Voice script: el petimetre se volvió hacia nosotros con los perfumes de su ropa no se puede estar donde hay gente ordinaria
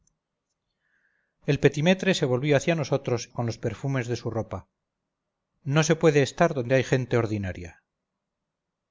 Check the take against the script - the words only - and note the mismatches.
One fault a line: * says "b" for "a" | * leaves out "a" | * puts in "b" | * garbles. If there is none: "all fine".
all fine